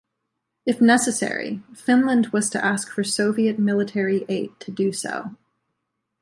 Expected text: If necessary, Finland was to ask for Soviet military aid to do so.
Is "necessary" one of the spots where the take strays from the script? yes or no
no